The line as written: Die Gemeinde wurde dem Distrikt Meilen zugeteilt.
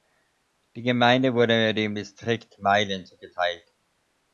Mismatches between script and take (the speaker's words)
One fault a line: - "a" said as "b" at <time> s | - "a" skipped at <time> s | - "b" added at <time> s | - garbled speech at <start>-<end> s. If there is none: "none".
none